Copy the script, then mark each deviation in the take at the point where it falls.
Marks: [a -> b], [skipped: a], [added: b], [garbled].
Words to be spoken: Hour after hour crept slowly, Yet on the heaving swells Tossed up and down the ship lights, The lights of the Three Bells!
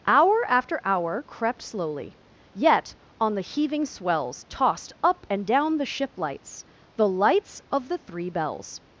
Hour after hour crept slowly, Yet on the heaving swells Tossed up and down the ship lights, The lights of the Three Bells!